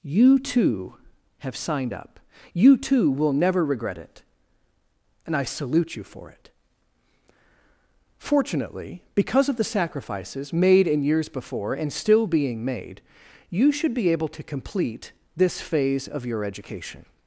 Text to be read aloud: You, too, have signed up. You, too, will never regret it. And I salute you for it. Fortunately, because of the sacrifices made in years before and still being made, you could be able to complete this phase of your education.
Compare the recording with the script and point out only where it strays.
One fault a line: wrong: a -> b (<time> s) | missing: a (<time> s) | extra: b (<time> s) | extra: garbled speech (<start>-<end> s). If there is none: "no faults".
wrong: could -> should (13.7 s)